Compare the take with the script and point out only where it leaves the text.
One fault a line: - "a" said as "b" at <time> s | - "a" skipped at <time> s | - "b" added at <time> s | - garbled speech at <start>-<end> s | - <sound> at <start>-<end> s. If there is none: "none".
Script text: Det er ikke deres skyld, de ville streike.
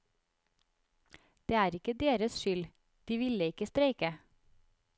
- "ikke" added at 3.4 s